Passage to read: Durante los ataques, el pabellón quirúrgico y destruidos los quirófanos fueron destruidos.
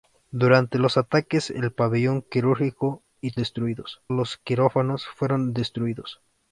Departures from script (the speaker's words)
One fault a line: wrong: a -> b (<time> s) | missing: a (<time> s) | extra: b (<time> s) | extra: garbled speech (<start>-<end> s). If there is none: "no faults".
no faults